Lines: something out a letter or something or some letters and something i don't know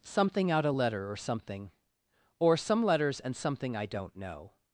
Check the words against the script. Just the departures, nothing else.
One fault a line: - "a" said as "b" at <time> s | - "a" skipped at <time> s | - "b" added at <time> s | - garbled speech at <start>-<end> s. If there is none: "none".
none